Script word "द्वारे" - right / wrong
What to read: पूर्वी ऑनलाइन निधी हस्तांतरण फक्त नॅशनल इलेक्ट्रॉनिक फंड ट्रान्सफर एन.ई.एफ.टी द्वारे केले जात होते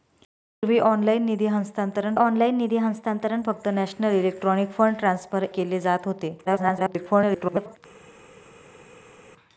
wrong